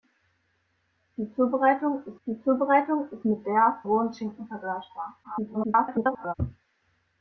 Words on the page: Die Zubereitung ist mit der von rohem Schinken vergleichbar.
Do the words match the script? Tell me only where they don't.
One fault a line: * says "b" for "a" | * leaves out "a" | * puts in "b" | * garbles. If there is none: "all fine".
* puts in "die Zubereitung ist"
* leaves out "von"
* garbles